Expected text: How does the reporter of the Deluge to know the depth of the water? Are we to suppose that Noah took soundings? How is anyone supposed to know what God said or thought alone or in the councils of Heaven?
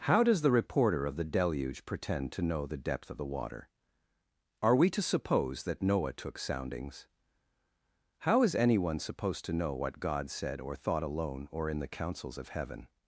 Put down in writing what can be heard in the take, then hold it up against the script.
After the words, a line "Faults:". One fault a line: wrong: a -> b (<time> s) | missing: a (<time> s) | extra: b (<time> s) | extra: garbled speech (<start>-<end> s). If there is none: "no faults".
How does the reporter of the Deluge pretend to know the depth of the water? Are we to suppose that Noah took soundings? How is anyone supposed to know what God said or thought alone or in the councils of Heaven?
Faults:
extra: pretend (1.9 s)